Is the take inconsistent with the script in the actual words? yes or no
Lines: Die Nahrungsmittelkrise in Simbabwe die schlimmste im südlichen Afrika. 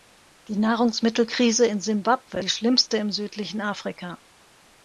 no